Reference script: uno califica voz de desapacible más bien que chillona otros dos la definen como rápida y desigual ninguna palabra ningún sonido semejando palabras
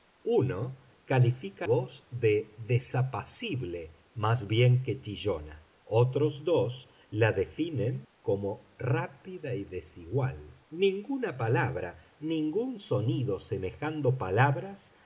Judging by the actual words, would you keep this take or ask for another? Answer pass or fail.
pass